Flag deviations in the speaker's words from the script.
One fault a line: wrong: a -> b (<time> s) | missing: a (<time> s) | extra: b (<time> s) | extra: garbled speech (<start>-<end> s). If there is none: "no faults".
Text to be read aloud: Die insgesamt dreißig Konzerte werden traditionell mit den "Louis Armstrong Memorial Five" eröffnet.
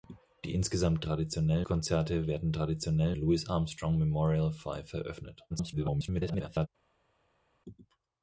wrong: dreißig -> traditionell (1.0 s)
missing: mit den (3.2 s)
extra: garbled speech (5.5-6.7 s)